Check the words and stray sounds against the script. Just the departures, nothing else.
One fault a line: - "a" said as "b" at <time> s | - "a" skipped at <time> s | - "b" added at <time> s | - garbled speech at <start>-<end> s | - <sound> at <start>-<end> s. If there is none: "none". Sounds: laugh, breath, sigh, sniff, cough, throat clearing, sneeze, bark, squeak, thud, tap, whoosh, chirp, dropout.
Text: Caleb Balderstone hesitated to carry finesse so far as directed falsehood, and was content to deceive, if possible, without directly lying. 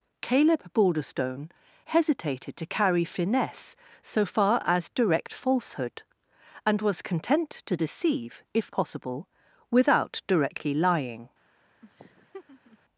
- "directed" said as "direct" at 4.9 s
- laugh at 11.8-12.8 s